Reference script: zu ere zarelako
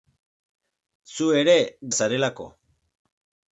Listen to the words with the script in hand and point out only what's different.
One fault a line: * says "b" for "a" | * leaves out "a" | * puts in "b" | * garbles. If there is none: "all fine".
all fine